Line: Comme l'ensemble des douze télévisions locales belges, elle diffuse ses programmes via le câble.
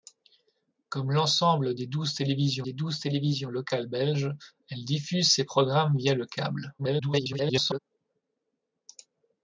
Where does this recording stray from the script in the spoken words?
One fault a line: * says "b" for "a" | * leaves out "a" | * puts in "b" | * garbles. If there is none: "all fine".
* puts in "des douze télévisions"
* garbles